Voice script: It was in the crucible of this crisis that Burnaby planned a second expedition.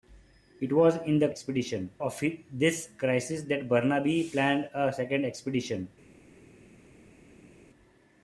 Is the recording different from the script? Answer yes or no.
yes